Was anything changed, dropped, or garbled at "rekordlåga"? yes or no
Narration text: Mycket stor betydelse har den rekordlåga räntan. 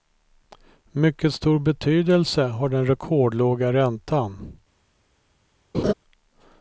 no